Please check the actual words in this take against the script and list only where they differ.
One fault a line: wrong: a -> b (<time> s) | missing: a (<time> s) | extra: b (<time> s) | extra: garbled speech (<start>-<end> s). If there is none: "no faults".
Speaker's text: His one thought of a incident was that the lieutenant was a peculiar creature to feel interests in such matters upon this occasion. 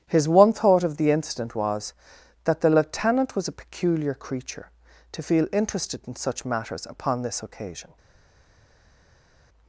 wrong: a -> the (1.0 s)
wrong: interests -> interested (5.5 s)